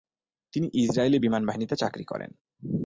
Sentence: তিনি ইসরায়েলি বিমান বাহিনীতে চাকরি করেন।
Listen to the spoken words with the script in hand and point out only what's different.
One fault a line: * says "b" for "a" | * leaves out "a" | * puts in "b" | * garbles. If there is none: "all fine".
all fine